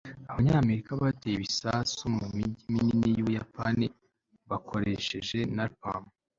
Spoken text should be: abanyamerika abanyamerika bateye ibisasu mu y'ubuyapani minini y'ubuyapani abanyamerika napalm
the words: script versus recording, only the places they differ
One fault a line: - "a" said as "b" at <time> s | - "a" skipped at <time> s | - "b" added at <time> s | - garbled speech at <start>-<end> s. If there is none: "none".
- "abanyamerika" skipped at 0.9 s
- "y'ubuyapani" said as "mijyi" at 2.4 s
- "abanyamerika" said as "bakoresheje" at 4.5 s